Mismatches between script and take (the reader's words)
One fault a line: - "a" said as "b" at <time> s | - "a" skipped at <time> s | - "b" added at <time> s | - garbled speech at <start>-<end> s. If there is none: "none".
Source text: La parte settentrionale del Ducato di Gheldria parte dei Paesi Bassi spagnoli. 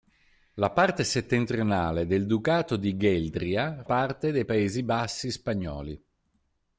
none